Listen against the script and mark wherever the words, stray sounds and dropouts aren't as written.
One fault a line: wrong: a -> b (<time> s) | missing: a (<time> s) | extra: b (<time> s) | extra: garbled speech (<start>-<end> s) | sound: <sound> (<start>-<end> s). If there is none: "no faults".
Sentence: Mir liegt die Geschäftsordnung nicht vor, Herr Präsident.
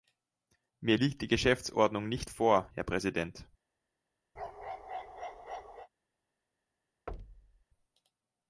sound: bark (4.4-5.9 s)
sound: thud (7.1-7.6 s)